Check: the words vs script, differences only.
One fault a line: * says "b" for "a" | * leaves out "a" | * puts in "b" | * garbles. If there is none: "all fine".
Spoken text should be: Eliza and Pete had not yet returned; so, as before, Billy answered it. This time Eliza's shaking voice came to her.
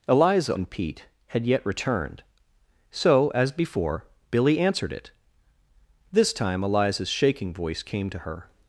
* leaves out "not"